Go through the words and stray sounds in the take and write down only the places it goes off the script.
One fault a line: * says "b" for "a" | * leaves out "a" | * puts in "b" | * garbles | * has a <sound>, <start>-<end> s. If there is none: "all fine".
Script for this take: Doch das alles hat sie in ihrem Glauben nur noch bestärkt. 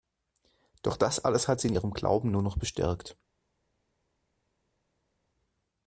all fine